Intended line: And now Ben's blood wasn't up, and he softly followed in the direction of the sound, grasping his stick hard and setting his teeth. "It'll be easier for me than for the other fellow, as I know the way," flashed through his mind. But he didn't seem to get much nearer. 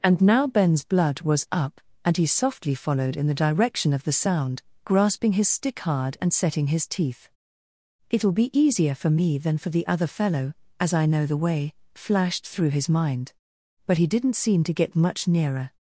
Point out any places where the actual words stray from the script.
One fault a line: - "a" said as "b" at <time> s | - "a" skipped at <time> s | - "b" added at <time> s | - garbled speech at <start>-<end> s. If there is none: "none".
- "wasn't" said as "was" at 1.2 s